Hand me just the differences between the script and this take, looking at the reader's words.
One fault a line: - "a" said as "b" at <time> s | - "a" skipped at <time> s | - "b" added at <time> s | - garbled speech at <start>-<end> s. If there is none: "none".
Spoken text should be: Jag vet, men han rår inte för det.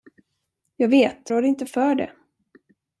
- "men han" skipped at 1.3 s